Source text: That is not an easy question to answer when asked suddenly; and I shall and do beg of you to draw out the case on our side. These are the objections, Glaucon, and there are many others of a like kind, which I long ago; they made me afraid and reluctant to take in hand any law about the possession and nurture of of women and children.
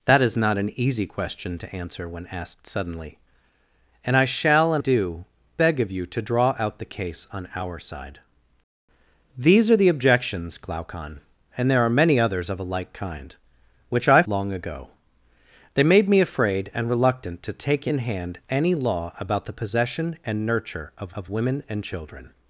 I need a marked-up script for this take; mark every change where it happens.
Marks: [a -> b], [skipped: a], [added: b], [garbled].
That is not an easy question to answer when asked suddenly; and I shall and do beg of you to draw out the case on our side. These are the objections, Glaucon, and there are many others of a like kind, which I long ago; they made me afraid and reluctant to take in hand any law about the possession and nurture of of women and children.